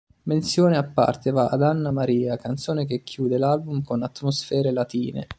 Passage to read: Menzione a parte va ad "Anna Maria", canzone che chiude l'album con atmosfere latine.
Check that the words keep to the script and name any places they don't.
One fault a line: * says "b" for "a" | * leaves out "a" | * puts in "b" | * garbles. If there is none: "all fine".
all fine